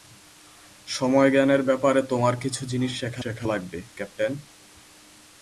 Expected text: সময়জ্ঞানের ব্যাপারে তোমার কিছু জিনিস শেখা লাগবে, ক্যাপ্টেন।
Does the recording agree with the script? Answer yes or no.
no